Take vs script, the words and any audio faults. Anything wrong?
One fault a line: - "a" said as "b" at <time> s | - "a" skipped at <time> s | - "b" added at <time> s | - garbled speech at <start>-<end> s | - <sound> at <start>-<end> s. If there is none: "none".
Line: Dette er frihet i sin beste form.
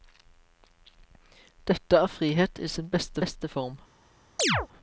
- "beste" added at 3.2 s
- chirp at 4.4-4.7 s